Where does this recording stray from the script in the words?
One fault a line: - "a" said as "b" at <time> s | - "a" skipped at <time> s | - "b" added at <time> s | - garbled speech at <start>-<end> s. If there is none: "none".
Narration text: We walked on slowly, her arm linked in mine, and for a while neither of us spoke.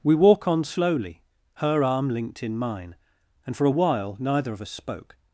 - "walked" said as "walk" at 0.1 s